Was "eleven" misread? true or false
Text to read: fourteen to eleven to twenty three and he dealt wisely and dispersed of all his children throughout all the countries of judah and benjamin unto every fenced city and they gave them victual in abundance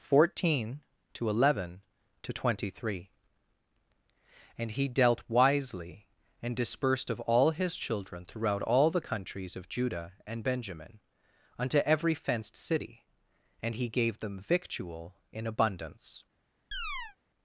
false